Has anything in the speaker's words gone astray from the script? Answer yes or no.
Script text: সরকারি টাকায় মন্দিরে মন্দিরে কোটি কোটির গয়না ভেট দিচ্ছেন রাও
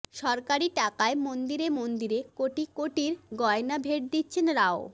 no